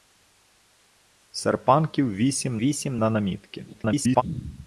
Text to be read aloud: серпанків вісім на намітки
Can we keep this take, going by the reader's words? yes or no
no